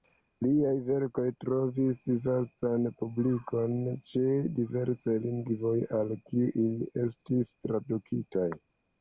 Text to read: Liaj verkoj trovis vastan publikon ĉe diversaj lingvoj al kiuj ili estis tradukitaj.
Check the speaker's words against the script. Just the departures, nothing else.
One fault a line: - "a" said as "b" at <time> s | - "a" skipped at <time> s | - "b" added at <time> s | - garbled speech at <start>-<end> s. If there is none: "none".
none